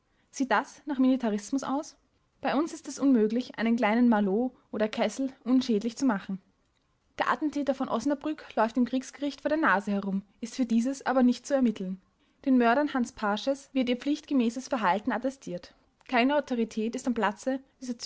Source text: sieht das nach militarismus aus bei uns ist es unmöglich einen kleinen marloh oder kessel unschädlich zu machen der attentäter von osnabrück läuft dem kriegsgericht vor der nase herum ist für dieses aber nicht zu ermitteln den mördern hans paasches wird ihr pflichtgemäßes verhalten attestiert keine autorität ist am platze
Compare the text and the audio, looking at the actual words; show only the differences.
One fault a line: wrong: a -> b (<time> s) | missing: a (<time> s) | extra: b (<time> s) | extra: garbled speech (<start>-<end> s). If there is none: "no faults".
no faults